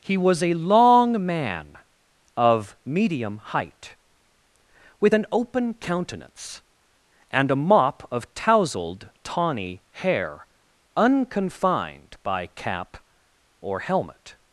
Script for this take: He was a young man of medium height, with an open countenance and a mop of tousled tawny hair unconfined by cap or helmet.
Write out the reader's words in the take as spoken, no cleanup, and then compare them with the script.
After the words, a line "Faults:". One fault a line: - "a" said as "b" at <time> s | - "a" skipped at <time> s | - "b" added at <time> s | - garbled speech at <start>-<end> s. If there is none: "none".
He was a long man of medium height, with an open countenance and a mop of tousled tawny hair unconfined by cap or helmet.
Faults:
- "young" said as "long" at 0.6 s